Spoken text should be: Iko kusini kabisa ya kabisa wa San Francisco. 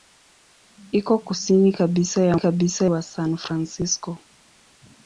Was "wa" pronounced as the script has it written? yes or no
yes